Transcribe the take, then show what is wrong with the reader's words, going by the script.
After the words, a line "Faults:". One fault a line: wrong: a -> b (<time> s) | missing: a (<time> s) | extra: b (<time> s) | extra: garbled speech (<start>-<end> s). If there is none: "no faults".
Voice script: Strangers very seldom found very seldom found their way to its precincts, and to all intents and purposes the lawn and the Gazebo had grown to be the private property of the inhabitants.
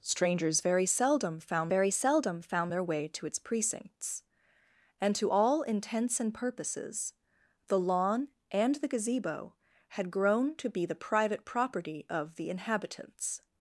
Strangers very seldom found very seldom found their way to its precincts, and to all intents and purposes the lawn and the Gazebo had grown to be the private property of the inhabitants.
Faults:
no faults